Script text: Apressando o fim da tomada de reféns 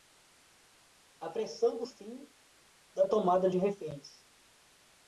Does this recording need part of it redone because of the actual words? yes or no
no